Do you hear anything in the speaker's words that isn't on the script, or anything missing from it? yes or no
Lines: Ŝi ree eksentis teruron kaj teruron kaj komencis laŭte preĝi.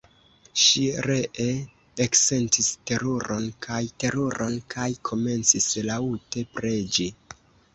no